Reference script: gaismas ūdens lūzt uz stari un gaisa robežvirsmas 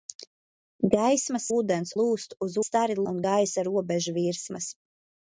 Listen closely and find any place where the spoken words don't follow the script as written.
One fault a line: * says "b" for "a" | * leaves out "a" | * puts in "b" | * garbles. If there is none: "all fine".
all fine